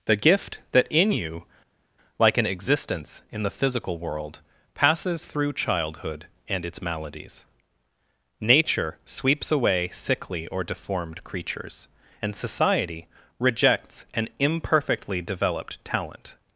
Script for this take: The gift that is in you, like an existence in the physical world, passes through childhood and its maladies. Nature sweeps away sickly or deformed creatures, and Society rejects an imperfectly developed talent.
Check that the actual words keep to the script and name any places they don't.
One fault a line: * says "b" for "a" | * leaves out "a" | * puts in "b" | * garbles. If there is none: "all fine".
* leaves out "is"